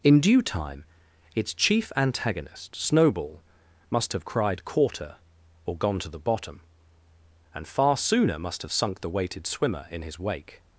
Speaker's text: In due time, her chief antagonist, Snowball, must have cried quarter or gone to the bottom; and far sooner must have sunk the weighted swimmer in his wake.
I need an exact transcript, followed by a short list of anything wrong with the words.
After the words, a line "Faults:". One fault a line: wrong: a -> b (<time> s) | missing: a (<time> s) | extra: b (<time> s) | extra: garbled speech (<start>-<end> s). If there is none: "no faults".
In due time, its chief antagonist, Snowball, must have cried quarter or gone to the bottom; and far sooner must have sunk the weighted swimmer in his wake.
Faults:
wrong: her -> its (1.4 s)